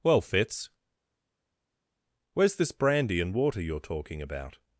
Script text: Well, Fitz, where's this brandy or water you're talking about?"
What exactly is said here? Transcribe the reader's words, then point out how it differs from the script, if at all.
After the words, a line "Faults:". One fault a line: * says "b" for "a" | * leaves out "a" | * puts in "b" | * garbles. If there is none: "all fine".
Well, Fitz, where's this brandy and water you're talking about?"
Faults:
* says "and" for "or"